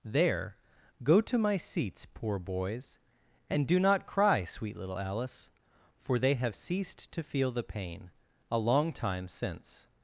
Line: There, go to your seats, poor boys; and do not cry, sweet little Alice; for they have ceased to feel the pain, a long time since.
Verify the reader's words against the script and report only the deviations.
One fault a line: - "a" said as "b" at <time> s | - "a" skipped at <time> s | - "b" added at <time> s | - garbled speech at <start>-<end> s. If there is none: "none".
- "your" said as "my" at 1.4 s